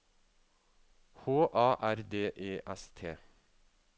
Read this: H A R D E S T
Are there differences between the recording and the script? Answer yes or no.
no